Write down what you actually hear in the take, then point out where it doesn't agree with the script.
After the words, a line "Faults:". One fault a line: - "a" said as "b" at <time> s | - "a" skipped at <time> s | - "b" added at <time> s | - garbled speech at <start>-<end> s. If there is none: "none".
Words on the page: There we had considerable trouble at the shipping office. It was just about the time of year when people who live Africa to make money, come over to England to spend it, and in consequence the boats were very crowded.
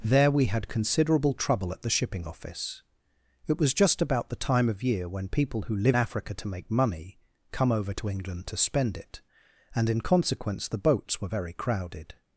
There we had considerable trouble at the shipping office. It was just about the time of year when people who live Africa to make money, come over to England to spend it, and in consequence the boats were very crowded.
Faults:
none